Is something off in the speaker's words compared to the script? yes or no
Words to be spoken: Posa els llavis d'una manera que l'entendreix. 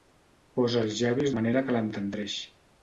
yes